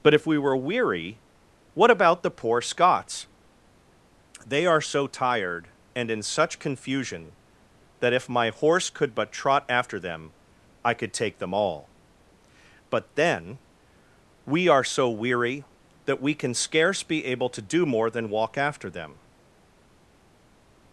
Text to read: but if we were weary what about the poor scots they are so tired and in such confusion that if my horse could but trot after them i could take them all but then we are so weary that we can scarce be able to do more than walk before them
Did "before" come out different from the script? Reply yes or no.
yes